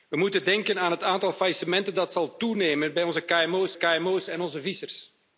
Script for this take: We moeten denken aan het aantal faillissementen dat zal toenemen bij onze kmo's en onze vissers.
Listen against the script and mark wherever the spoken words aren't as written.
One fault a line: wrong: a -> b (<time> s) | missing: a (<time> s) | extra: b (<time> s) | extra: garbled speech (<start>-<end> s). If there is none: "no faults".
extra: kmo's (3.7 s)